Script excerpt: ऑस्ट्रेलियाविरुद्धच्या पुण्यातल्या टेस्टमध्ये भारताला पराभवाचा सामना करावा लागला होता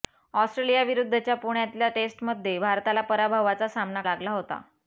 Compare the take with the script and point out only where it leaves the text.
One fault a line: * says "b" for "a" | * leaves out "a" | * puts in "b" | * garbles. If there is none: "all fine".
* leaves out "करावा"